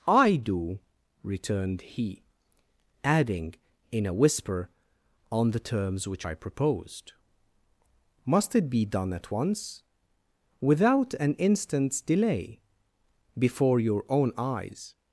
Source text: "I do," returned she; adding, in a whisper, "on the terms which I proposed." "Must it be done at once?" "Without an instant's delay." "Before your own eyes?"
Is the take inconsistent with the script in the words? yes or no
yes